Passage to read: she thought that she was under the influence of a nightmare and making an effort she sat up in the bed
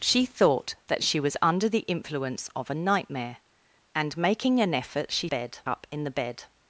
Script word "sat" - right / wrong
wrong